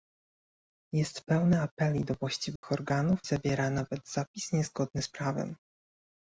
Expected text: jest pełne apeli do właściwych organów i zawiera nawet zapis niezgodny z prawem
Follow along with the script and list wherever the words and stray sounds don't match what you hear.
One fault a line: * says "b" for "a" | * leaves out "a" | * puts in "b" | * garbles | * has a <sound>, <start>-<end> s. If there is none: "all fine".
* has a dropout, 2.6-2.6 s
* leaves out "i"